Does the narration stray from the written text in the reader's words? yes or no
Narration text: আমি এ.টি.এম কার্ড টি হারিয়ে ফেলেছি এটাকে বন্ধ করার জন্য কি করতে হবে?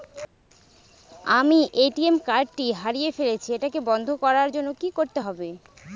no